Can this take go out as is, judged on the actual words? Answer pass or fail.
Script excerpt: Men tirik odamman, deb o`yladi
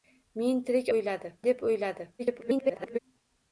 fail